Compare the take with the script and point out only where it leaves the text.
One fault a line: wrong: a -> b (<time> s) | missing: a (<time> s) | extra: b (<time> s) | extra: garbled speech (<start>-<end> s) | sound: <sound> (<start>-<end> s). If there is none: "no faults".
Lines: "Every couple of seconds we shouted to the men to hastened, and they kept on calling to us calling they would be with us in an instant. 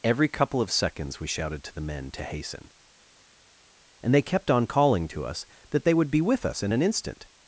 wrong: hastened -> hasten (2.2 s)
wrong: calling -> that (5.7 s)